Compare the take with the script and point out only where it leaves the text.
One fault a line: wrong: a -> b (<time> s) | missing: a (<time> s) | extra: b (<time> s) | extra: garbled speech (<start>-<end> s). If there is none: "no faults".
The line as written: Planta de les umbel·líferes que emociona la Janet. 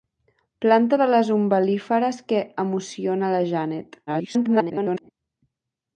extra: garbled speech (4.1-5.1 s)